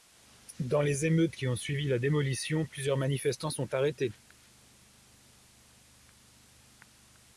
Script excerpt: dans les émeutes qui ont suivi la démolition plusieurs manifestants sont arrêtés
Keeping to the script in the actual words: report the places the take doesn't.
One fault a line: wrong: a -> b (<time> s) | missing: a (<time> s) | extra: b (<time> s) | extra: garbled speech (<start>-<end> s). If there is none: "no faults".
no faults